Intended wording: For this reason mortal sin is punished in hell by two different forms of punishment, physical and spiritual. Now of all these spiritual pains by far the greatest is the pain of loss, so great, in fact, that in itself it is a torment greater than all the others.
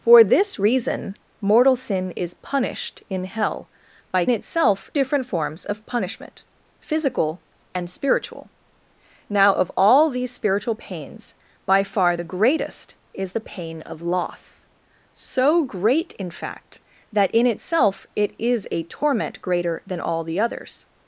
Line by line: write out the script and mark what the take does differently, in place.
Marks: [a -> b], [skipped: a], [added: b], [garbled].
For this reason mortal sin is punished in hell by [two -> itself] different forms of punishment, physical and spiritual. Now of all these spiritual pains by far the greatest is the pain of loss, so great, in fact, that in itself it is a torment greater than all the others.